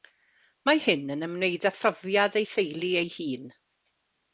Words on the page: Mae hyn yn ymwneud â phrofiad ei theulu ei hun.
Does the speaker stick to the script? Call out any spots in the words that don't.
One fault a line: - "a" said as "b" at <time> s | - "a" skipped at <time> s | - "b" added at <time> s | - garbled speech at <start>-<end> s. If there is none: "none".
none